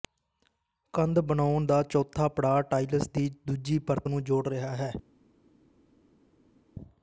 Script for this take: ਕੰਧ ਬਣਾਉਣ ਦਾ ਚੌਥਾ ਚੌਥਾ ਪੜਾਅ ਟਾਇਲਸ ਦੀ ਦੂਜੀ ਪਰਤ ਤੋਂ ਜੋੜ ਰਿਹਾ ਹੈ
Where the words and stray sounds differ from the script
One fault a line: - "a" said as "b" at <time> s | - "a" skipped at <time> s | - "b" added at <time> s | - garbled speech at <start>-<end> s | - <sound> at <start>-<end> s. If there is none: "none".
- "ਚੌਥਾ" skipped at 2.3 s
- "ਤੋਂ" said as "ਨੂੰ" at 4.1 s